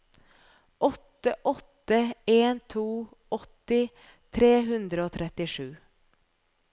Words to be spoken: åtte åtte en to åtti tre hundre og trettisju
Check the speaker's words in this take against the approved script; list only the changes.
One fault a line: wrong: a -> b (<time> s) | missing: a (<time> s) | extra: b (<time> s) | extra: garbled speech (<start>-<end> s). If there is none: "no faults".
no faults